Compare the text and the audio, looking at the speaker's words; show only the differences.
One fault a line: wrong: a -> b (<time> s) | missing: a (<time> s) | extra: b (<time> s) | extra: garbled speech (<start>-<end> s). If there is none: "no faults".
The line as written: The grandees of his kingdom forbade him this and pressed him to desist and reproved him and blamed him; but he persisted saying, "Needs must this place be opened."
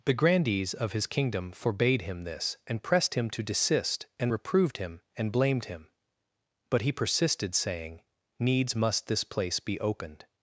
no faults